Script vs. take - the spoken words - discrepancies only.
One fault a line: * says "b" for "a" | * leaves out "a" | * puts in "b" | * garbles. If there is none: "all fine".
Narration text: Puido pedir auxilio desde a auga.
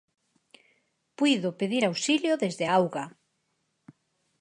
all fine